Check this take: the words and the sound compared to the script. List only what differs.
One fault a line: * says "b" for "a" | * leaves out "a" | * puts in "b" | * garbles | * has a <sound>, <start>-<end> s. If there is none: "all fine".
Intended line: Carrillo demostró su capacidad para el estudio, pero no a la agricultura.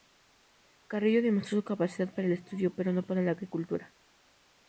* says "para" for "a"